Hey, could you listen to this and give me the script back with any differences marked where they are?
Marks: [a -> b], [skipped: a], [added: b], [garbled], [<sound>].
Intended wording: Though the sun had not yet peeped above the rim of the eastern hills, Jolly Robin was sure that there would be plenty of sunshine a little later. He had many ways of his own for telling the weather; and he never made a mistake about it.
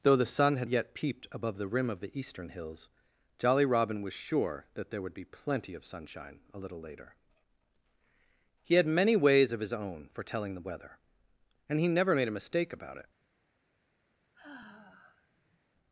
Though the sun had [skipped: not] yet peeped above the rim of the eastern hills, Jolly Robin was sure that there would be plenty of sunshine a little later. He had many ways of his own for telling the weather; and he never made a mistake about it. [sigh]